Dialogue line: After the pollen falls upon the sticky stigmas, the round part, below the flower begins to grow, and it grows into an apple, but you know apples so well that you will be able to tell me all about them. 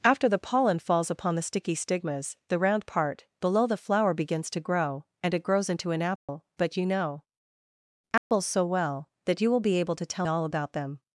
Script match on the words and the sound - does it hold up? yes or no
no